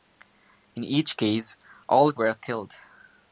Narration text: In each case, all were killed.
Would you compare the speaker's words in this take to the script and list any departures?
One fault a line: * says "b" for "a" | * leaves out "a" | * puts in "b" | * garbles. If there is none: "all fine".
all fine